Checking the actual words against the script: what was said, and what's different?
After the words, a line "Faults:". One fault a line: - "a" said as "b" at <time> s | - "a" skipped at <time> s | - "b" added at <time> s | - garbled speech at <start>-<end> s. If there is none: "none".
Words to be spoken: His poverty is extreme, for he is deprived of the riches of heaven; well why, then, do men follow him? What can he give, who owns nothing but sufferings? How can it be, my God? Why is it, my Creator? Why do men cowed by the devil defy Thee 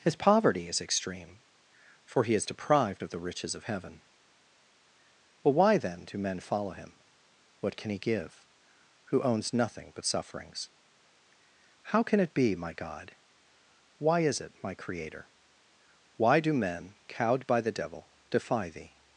His poverty is extreme, for he is deprived of the riches of heaven; well why, then, do men follow him? What can he give, who owns nothing but sufferings? How can it be, my God? Why is it, my Creator? Why do men cowed by the devil defy Thee
Faults:
none